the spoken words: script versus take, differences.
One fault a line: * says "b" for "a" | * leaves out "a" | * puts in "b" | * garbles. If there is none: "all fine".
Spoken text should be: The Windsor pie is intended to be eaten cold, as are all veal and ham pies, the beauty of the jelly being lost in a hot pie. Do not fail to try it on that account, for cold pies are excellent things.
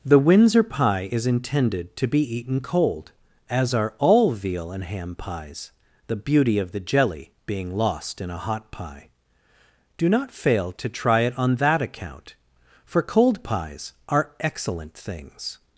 all fine